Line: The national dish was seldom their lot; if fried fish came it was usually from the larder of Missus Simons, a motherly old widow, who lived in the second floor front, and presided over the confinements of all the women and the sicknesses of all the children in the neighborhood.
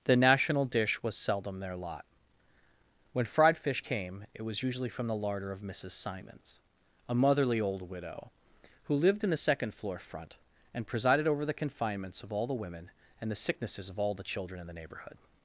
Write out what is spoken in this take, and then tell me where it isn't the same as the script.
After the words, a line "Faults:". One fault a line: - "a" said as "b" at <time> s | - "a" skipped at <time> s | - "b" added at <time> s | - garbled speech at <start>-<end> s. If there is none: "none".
The national dish was seldom their lot; when fried fish came it was usually from the larder of Missus Simons, a motherly old widow, who lived in the second floor front, and presided over the confinements of all the women and the sicknesses of all the children in the neighborhood.
Faults:
- "if" said as "when" at 3.1 s